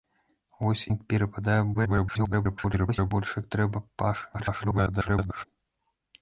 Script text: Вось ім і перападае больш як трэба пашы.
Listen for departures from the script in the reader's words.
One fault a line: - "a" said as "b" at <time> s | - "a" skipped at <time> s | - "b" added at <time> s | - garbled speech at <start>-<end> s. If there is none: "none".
- "ім" skipped at 0.8 s
- garbled speech at 1.7-3.1 s
- garbled speech at 4.3-5.5 s